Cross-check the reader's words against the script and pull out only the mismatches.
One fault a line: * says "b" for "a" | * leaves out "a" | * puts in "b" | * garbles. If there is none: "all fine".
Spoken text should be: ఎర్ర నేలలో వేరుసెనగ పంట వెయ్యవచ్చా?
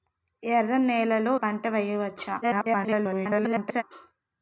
* leaves out "వేరుసెనగ"
* garbles